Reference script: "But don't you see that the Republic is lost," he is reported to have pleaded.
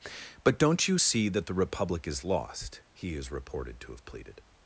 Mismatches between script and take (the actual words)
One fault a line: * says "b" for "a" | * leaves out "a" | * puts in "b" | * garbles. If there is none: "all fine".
all fine